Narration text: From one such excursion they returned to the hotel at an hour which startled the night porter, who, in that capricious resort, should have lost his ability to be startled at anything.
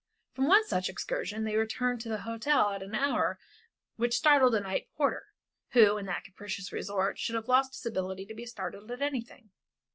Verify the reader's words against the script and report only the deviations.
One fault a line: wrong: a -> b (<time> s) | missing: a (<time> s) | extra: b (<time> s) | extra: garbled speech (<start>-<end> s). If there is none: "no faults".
no faults